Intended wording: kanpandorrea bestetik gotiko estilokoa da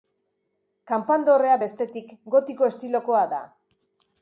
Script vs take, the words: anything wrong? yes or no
no